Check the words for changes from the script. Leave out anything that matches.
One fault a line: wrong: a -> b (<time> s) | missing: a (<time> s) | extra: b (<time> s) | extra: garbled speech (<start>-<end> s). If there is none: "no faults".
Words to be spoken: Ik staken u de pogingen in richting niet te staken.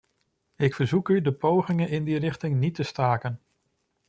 wrong: staken -> verzoek (0.7 s)
extra: die (2.0 s)